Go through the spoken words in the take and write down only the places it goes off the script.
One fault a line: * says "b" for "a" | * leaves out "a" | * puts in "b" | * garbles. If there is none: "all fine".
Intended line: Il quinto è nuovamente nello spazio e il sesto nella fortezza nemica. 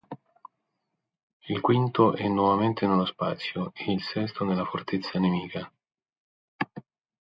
all fine